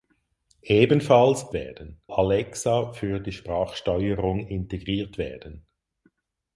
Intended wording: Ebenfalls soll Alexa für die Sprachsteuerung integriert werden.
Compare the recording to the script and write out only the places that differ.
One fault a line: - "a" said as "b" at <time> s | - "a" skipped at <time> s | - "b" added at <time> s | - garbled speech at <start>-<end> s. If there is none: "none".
- "soll" said as "werden" at 1.5 s